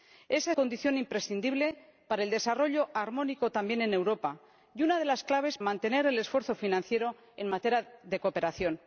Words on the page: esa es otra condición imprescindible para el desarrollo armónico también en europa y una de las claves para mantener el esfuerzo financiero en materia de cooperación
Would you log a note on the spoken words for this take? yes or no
yes